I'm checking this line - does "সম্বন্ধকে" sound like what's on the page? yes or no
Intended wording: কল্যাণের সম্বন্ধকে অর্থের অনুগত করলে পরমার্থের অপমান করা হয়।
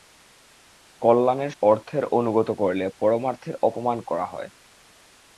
no